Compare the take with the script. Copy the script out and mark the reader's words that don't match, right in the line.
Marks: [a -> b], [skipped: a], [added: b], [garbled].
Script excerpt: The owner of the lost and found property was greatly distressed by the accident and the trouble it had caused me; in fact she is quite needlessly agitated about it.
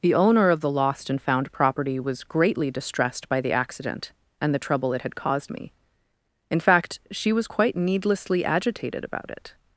The owner of the lost and found property was greatly distressed by the accident and the trouble it had caused me; in fact she [is -> was] quite needlessly agitated about it.